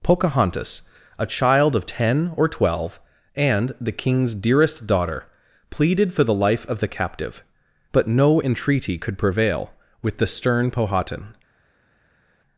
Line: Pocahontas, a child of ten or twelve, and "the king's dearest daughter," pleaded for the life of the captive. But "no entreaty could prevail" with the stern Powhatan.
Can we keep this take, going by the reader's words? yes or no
yes